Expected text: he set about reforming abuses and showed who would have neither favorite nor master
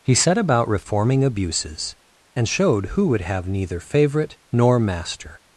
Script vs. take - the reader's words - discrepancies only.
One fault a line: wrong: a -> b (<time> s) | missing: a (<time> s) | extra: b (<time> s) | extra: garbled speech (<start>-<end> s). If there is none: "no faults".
no faults